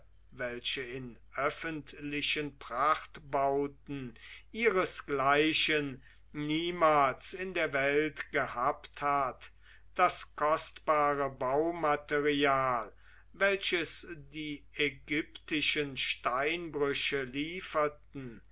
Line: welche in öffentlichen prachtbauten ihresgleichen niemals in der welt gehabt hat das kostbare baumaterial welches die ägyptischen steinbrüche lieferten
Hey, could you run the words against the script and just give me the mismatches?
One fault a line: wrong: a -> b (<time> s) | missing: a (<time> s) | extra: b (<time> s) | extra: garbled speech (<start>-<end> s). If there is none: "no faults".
no faults